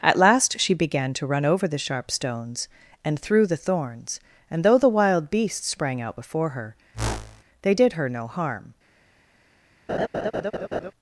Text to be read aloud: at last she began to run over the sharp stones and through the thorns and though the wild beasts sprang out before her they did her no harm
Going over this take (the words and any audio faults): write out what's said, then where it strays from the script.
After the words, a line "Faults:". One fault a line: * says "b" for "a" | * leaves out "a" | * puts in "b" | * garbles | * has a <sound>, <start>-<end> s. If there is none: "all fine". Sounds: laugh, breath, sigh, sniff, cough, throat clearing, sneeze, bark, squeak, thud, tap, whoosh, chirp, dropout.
at last she began to run over the sharp stones and through the thorns and though the wild beasts sprang out before her they did her no harm
Faults:
* has a whoosh, 6.9-7.4 s
* has a laugh, 9.9-10.9 s